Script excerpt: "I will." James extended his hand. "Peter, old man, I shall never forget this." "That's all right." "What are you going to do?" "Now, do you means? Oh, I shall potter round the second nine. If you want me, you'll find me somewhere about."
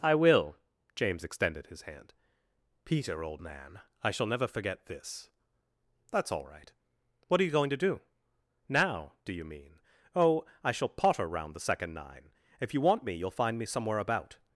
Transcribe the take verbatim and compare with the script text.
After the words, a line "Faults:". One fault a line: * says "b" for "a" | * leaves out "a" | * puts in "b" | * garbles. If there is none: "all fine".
"I will." James extended his hand. "Peter, old man, I shall never forget this." "That's all right." "What are you going to do?" "Now, do you mean? Oh, I shall potter round the second nine. If you want me, you'll find me somewhere about."
Faults:
* says "mean" for "means"